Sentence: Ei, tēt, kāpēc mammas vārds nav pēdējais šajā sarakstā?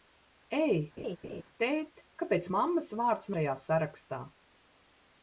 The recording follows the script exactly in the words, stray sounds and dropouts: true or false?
false